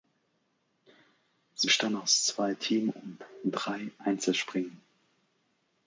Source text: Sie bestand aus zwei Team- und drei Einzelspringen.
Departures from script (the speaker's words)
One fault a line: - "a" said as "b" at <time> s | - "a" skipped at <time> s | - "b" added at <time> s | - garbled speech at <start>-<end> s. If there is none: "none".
none